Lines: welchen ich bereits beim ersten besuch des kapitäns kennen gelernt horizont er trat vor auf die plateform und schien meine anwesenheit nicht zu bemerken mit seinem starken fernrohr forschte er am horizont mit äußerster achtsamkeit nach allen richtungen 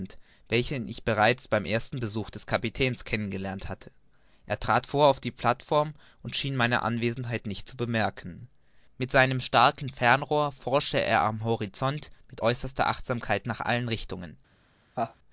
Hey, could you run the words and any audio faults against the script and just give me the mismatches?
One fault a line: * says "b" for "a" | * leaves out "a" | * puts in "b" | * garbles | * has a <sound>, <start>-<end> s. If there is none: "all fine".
* says "hatte" for "horizont"
* has a laugh, 15.0-15.2 s